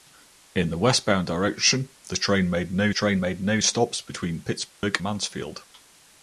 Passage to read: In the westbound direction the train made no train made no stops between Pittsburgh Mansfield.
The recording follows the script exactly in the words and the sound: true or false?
false